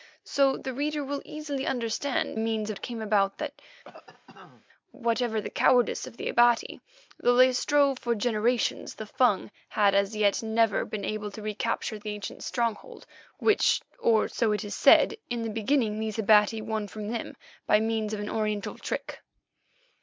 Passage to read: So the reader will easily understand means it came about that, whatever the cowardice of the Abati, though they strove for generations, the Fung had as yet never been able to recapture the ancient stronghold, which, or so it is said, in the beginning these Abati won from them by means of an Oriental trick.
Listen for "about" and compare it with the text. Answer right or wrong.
right